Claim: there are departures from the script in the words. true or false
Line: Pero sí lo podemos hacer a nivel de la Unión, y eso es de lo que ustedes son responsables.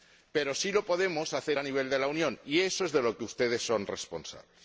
false